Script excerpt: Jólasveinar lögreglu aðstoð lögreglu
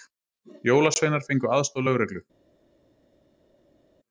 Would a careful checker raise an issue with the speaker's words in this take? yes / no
yes